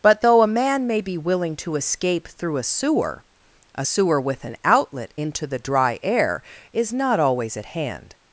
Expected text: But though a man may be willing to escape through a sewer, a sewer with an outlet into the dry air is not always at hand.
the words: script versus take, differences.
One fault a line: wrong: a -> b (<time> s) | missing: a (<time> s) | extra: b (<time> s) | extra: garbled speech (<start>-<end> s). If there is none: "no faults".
no faults